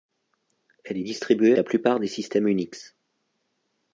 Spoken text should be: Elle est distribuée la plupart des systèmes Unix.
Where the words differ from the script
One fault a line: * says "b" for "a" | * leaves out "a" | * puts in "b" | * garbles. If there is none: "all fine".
all fine